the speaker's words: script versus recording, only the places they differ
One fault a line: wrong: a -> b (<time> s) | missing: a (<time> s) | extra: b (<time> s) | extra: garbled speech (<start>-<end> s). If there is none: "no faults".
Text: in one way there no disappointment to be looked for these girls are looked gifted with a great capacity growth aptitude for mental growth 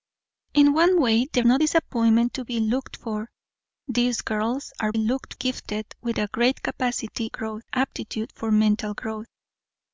no faults